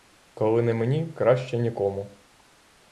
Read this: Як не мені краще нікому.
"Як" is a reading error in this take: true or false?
true